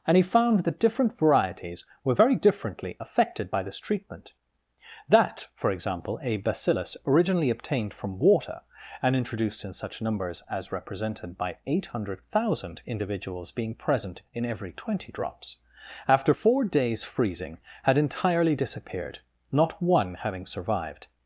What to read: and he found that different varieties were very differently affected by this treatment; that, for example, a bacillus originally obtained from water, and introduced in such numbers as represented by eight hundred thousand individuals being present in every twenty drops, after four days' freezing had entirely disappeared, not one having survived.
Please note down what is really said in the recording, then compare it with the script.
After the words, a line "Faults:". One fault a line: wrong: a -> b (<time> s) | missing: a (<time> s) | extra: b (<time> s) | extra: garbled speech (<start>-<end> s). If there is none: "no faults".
and he found that different varieties were very differently affected by this treatment; that, for example, a bacillus originally obtained from water, and introduced in such numbers as represented by eight hundred thousand individuals being present in every twenty drops, after four days' freezing had entirely disappeared, not one having survived.
Faults:
no faults